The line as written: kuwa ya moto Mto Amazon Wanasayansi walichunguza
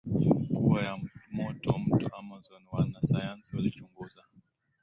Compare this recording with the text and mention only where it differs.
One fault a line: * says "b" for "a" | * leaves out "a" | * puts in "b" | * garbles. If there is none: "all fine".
all fine